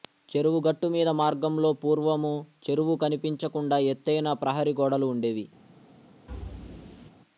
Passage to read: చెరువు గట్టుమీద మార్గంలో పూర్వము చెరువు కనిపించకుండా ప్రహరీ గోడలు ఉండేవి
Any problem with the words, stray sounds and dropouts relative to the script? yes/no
yes